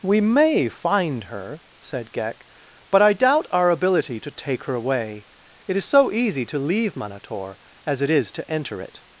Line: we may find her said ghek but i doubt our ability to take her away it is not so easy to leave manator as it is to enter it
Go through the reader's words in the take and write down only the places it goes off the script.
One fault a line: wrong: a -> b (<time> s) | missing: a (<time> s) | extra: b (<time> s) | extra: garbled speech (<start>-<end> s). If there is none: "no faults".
missing: not (5.8 s)